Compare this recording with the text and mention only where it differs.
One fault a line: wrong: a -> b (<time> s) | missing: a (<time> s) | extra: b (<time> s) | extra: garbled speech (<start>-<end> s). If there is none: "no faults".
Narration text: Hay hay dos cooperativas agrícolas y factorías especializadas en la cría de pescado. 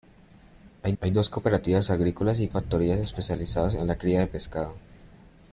no faults